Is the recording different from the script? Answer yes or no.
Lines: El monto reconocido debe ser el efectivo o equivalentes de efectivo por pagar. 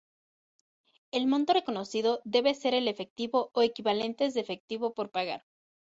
no